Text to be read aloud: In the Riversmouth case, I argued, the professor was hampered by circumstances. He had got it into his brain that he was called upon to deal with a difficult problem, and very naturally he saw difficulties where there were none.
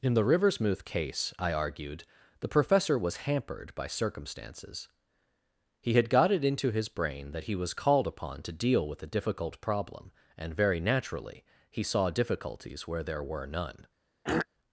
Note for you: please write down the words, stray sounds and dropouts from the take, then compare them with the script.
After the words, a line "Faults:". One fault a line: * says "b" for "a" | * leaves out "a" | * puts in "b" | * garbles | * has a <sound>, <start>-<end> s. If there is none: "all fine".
In the Riversmouth case, I argued, the professor was hampered by circumstances. He had got it into his brain that he was called upon to deal with a difficult problem, and very naturally he saw difficulties where there were none.
Faults:
* has a throat clearing, 14.2-14.5 s